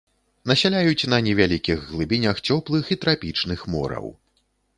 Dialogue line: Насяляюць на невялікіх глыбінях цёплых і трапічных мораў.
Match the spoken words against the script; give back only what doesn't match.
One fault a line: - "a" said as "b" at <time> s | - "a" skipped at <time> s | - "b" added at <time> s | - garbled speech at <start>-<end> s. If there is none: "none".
none